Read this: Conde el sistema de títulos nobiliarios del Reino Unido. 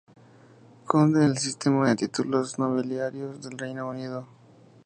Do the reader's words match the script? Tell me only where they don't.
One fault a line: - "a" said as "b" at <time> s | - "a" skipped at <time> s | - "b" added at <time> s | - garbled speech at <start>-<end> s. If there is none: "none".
none